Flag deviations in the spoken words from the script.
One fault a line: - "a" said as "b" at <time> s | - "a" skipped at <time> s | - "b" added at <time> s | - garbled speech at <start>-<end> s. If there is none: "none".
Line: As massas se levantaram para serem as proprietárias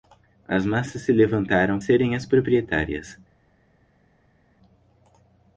- "para" skipped at 1.8 s